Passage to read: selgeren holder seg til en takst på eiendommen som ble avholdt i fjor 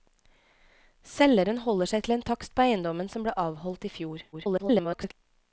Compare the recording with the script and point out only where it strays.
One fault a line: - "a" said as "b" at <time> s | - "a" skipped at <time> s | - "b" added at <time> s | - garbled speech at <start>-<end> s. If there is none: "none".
- garbled speech at 4.3-5.1 s